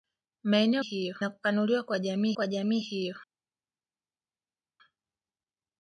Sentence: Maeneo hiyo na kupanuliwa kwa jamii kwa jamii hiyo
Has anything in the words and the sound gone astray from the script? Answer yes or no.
no